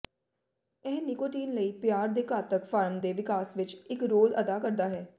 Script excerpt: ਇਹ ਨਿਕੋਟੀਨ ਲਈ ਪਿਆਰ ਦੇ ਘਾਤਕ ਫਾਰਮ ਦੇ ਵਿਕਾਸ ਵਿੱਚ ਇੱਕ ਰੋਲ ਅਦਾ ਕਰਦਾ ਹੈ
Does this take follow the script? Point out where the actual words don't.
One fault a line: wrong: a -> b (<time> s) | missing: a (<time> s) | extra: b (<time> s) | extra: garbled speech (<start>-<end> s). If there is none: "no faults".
no faults